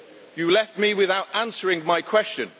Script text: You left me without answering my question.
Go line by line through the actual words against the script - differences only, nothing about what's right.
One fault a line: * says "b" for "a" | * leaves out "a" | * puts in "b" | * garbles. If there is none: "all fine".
all fine